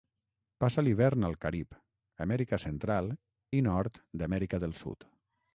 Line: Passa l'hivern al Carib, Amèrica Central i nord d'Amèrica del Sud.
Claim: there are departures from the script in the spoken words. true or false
false